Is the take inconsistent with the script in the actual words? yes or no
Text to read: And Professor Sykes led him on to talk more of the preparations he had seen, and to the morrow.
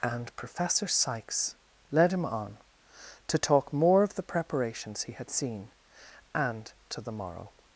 no